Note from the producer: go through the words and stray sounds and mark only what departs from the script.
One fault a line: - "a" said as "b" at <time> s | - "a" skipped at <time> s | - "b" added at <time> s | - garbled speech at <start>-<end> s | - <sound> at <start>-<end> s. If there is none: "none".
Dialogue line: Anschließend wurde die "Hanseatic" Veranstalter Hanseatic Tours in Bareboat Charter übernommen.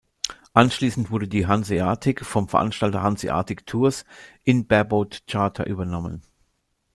- "vom" added at 2.2 s